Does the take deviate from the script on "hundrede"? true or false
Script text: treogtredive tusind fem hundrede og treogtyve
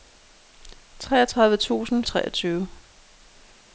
true